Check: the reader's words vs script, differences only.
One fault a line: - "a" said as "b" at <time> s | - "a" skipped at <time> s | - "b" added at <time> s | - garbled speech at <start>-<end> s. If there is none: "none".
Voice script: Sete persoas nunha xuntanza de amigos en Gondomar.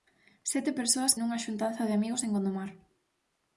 none